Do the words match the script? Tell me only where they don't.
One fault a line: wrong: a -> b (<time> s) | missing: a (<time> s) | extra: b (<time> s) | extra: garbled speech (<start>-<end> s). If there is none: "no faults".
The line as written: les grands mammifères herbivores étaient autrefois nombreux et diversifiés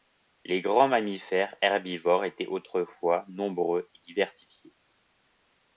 no faults